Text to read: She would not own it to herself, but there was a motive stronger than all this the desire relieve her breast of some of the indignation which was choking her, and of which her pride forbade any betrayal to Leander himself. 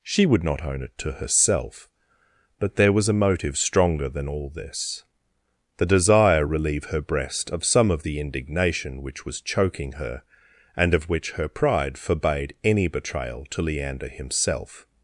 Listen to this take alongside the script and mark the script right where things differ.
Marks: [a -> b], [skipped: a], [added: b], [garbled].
She would not own it to herself, but there was a motive stronger than all this the desire relieve her breast of some of the indignation which was choking her, and of which her pride forbade any betrayal to Leander himself.